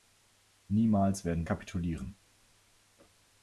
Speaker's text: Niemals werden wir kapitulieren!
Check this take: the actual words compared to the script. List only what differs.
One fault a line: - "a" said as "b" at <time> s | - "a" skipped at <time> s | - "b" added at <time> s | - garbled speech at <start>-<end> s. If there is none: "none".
- "wir" skipped at 1.4 s